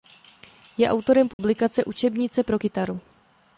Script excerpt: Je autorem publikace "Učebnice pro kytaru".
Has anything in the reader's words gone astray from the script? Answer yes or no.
no